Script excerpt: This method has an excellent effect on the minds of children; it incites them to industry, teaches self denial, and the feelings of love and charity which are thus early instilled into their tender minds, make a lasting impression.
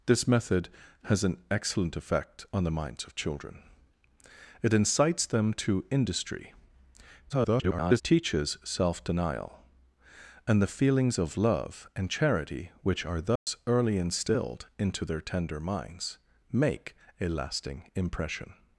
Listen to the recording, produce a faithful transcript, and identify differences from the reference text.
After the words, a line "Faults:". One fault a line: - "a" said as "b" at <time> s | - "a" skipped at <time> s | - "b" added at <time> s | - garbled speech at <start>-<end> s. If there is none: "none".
This method has an excellent effect on the minds of children; it incites them to industry, [garbled] teaches self denial, and the feelings of love and charity which are thus early instilled into their tender minds, make a lasting impression.
Faults:
- garbled speech at 7.3-8.0 s